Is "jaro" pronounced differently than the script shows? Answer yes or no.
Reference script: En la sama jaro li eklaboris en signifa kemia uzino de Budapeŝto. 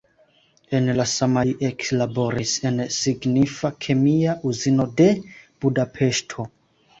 yes